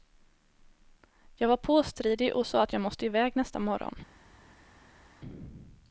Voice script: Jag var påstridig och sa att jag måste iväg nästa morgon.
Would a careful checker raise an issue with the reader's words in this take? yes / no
no